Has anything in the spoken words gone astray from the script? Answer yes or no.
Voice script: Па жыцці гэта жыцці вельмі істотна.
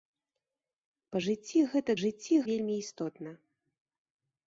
no